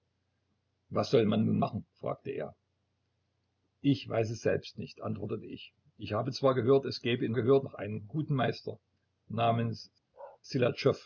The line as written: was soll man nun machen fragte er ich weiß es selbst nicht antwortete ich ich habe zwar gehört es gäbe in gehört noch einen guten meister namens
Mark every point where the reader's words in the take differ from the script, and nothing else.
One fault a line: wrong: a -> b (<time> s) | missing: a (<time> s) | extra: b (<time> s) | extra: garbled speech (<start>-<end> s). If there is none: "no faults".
no faults